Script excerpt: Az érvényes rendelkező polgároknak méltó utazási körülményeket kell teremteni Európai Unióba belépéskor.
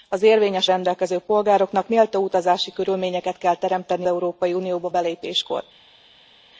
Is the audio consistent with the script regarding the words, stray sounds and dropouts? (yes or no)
yes